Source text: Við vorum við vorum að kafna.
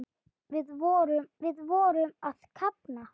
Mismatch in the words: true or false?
false